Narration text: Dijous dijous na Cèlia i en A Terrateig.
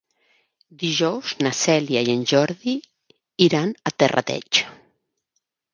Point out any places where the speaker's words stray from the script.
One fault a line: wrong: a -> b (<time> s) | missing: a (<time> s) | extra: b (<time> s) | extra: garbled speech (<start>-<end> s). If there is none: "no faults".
missing: dijous (1.3 s)
extra: Jordi iran (2.3 s)